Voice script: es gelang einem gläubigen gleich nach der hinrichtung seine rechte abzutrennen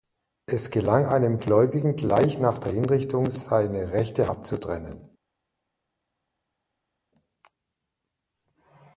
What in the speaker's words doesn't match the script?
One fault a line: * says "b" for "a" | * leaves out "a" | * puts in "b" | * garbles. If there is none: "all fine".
all fine